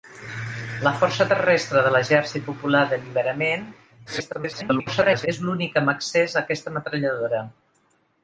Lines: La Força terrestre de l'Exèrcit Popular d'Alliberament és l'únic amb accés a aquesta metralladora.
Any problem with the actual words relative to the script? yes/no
yes